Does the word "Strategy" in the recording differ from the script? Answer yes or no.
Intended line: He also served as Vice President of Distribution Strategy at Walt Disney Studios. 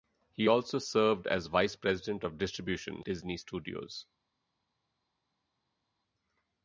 yes